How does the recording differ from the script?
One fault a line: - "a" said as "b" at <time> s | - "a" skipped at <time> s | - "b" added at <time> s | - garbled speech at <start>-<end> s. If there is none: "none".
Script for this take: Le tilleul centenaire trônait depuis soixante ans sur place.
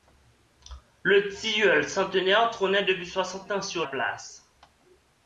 none